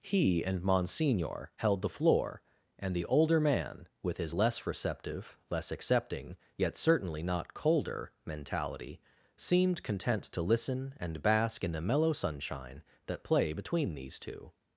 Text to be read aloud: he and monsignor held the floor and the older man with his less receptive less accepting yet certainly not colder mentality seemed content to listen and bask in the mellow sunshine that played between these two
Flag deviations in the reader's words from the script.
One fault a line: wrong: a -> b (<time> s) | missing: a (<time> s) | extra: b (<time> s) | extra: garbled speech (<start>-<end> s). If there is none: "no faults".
wrong: played -> play (13.2 s)